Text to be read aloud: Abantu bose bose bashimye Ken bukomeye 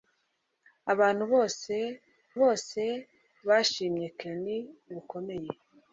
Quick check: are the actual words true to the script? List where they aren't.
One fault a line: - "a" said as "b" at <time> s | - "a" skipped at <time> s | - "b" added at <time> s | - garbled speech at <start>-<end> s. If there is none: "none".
none